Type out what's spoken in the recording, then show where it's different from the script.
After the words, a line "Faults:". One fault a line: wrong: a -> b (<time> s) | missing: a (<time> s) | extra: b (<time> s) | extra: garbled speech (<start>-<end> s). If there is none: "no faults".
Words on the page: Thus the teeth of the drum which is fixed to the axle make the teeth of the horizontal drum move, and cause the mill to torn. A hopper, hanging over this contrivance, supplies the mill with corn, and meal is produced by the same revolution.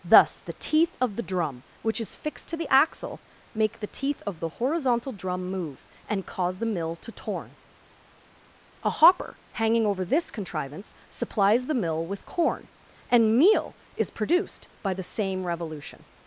Thus the teeth of the drum which is fixed to the axle make the teeth of the horizontal drum move, and cause the mill to torn. A hopper, hanging over this contrivance, supplies the mill with corn, and meal is produced by the same revolution.
Faults:
no faults